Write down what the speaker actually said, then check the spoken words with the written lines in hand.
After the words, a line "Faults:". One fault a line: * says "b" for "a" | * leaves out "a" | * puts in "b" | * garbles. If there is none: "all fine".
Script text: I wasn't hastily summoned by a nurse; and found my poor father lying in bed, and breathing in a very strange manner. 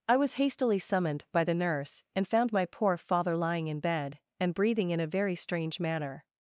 I was hastily summoned by the nurse; and found my poor father lying in bed, and breathing in a very strange manner.
Faults:
* says "was" for "wasn't"
* says "the" for "a"